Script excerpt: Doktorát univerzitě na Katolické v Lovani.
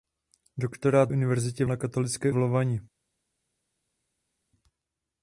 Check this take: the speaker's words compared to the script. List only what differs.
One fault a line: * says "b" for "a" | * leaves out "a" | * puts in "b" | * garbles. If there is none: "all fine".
all fine